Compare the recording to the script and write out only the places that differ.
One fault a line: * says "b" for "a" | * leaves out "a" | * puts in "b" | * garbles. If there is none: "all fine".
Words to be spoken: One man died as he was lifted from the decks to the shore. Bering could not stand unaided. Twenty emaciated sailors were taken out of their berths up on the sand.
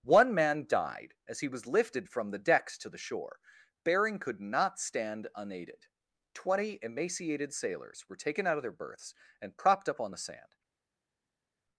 * puts in "and propped"